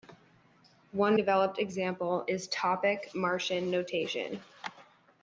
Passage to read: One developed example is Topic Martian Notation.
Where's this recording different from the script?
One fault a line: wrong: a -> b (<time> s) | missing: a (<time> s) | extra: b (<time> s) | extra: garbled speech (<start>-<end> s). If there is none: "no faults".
no faults